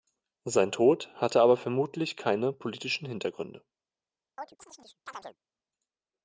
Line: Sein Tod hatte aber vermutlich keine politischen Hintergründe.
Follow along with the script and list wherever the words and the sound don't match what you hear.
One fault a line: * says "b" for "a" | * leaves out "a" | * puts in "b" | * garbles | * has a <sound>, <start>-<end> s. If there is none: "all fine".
* has a chirp, 4.4-5.4 s